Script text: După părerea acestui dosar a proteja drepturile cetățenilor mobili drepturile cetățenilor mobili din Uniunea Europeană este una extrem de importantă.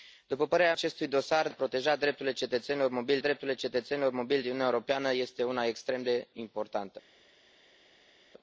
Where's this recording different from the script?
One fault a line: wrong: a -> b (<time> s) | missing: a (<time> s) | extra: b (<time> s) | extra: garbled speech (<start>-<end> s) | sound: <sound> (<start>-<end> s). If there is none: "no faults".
no faults